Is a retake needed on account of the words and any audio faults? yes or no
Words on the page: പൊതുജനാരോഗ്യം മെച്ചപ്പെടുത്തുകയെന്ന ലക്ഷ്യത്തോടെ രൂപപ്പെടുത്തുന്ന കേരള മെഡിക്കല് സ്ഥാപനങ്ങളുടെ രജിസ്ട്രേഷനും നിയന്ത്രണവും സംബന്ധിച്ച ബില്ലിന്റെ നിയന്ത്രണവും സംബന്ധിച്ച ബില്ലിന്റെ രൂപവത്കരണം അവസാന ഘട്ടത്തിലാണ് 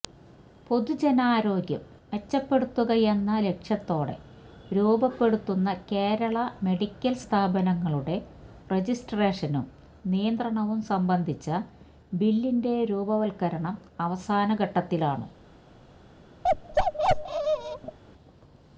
yes